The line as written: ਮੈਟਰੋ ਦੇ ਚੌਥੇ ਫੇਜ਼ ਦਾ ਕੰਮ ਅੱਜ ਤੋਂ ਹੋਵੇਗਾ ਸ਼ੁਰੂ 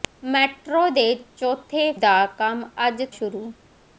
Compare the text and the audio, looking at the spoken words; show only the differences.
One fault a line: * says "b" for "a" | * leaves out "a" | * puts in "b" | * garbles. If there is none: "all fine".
* leaves out "ਫੇਜ਼"
* leaves out "ਤੋਂ ਹੋਵੇਗਾ"